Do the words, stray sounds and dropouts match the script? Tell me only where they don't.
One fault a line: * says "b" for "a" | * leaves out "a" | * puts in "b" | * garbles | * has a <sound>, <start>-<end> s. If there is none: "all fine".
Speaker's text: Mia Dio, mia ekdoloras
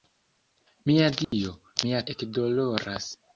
* has a dropout, 1.2-1.3 s